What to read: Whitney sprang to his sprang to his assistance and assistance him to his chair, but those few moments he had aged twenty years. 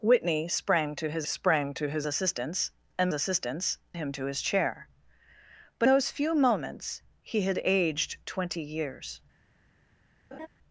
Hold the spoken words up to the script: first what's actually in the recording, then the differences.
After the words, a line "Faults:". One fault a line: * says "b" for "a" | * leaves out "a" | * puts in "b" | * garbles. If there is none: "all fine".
Whitney sprang to his sprang to his assistance and assistance him to his chair, but those few moments he had aged twenty years.
Faults:
all fine